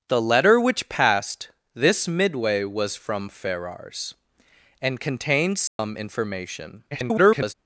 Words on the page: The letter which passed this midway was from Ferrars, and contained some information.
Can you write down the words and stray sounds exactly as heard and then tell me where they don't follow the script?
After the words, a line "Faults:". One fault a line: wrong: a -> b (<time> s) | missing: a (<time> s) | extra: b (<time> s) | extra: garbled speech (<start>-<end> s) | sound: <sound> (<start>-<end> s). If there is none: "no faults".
The letter which passed this midway was from Ferrars, and contained some information. [garbled]
Faults:
sound: dropout (5.7-5.8 s)
extra: garbled speech (6.9-7.5 s)